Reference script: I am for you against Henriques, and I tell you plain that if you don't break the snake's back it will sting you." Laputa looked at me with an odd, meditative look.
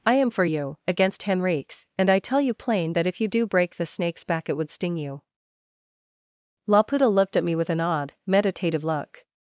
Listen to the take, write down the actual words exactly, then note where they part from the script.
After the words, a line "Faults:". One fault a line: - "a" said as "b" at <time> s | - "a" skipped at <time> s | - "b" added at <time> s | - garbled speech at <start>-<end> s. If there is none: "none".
I am for you against Henriques, and I tell you plain that if you do break the snake's back it would sting you." Laputa looked at me with an odd, meditative look.
Faults:
- "don't" said as "do" at 3.3 s
- "will" said as "would" at 4.5 s